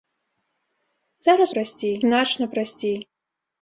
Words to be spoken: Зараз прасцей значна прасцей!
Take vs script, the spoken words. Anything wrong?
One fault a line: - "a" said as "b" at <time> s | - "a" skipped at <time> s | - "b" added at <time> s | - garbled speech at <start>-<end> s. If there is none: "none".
none